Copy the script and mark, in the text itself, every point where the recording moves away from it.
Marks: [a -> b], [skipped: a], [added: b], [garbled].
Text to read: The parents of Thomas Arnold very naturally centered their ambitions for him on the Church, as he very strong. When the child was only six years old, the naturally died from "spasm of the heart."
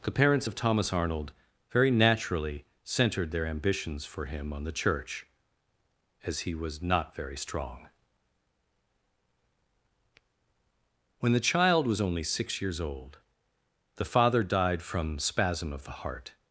The parents of Thomas Arnold very naturally centered their ambitions for him on the Church, as he [added: was not] very strong. When the child was only six years old, the [naturally -> father] died from "spasm of the heart."